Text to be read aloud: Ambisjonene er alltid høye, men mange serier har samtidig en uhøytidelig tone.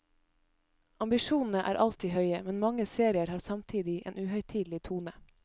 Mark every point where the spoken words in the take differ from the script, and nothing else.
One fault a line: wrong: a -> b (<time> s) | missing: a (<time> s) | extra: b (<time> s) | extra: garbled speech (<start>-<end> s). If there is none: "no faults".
no faults